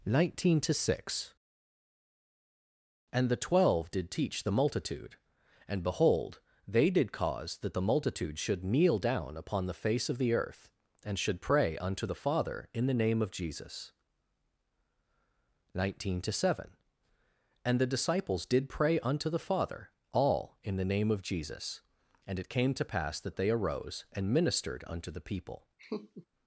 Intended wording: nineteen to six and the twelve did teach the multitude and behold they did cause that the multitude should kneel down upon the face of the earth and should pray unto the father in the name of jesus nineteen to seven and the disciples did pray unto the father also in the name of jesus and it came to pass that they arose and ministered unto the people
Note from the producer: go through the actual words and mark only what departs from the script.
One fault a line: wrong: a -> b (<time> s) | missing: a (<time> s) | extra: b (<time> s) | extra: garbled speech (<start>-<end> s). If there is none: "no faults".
wrong: also -> all (20.1 s)